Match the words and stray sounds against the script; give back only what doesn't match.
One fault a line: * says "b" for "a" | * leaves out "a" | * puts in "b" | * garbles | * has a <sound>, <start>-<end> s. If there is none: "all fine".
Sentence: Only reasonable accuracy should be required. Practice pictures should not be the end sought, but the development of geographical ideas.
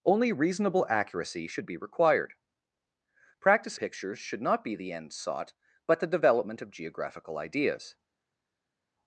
all fine